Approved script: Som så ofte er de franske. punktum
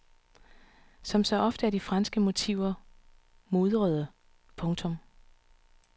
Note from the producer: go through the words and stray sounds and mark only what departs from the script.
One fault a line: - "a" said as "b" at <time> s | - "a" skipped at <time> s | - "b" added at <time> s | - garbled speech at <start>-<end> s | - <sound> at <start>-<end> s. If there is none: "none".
- "motiver mudrede" added at 2.2 s